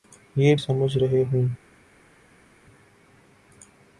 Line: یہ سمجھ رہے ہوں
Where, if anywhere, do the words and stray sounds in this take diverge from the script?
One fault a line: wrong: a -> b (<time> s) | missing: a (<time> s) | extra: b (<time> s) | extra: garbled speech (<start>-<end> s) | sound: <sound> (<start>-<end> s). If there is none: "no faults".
no faults